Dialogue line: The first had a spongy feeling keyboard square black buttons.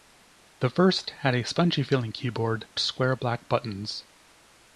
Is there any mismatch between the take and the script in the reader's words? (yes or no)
no